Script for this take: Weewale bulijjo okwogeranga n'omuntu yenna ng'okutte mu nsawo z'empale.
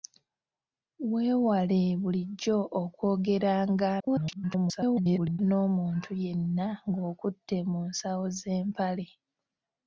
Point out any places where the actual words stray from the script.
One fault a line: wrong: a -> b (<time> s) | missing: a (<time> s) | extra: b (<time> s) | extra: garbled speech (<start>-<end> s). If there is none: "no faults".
extra: garbled speech (4.0-5.4 s)